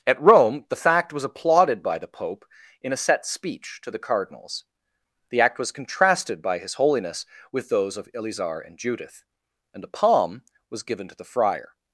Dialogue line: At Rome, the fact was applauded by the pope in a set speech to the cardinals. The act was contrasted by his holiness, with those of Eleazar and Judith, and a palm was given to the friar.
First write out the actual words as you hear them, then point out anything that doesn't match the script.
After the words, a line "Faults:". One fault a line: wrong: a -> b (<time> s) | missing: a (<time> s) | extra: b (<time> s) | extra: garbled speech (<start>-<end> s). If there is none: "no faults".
At Rome, the fact was applauded by the pope in a set speech to the cardinals. The act was contrasted by his holiness, with those of Eleazar and Judith, and a palm was given to the friar.
Faults:
no faults